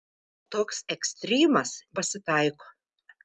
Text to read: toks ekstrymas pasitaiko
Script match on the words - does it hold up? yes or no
yes